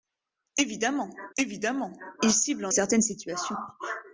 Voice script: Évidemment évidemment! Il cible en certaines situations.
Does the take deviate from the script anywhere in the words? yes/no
no